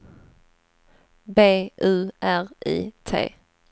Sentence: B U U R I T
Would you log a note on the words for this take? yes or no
yes